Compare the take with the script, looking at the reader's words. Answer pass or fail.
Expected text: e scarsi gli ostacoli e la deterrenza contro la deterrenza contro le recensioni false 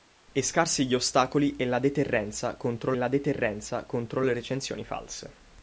pass